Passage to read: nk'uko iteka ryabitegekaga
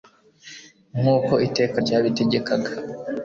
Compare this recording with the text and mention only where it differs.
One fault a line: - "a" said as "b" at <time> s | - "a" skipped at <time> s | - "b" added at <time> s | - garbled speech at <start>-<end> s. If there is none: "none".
none